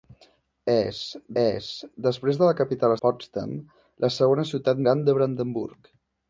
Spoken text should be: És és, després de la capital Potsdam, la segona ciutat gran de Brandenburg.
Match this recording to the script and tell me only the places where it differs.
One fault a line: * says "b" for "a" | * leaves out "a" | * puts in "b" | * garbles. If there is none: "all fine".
all fine